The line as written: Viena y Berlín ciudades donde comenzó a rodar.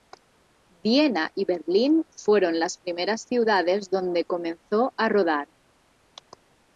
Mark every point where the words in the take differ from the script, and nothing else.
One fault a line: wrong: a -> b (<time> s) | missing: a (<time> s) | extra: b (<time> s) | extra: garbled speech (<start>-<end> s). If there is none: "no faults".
extra: fueron las primeras (2.1 s)